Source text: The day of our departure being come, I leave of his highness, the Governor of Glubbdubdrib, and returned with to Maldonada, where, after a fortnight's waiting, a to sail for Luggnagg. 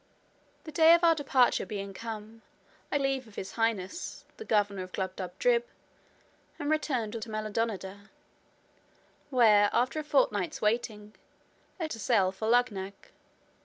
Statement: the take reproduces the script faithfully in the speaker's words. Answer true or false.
true